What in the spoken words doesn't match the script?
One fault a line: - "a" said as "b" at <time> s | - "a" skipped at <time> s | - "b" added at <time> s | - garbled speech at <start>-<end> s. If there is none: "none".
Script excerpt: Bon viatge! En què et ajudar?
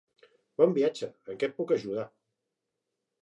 - "puc" added at 1.6 s